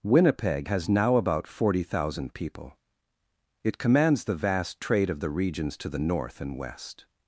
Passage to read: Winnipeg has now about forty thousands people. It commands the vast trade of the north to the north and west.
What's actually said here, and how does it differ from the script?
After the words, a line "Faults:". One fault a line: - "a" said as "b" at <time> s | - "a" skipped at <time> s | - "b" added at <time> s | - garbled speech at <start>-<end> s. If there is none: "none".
Winnipeg has now about forty thousand people. It commands the vast trade of the regions to the north and west.
Faults:
- "thousands" said as "thousand" at 1.8 s
- "north" said as "regions" at 5.3 s